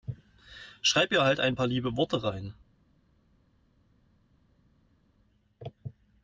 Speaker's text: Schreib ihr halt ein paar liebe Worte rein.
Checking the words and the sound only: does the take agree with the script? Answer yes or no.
yes